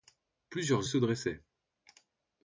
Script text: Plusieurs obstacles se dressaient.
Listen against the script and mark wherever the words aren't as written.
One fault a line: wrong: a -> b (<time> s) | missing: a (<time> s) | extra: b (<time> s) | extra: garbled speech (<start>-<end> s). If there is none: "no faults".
missing: obstacles (0.9 s)